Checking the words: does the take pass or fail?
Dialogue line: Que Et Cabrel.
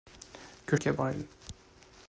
pass